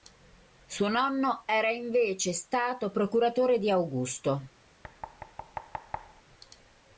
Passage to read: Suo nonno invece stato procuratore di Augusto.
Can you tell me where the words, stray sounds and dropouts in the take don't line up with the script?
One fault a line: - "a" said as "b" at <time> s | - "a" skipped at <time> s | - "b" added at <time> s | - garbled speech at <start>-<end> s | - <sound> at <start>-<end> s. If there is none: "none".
- "era" added at 1.4 s
- thud at 4.8-6.2 s